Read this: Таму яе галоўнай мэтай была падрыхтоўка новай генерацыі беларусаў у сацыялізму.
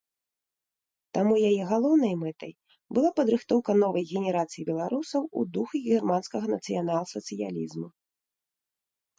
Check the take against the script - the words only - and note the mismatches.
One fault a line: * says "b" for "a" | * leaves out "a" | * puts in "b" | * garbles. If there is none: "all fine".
* puts in "духу германскага нацыянал"